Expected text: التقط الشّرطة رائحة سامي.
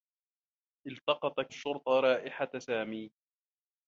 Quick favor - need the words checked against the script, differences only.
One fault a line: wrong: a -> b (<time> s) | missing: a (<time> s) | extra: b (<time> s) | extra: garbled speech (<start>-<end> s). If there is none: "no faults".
no faults